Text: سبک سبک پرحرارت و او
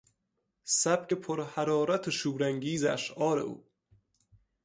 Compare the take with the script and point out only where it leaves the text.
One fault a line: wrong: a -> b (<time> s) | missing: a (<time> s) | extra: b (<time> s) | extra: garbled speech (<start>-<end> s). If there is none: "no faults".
missing: سبک (1.1 s)
extra: شورانگیز اشعار (2.1 s)